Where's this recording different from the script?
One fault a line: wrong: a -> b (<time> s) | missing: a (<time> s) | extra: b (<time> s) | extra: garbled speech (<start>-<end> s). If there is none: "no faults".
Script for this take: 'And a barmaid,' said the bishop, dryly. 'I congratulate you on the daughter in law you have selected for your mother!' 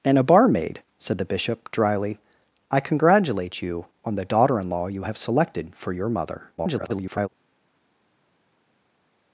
extra: garbled speech (6.6-7.3 s)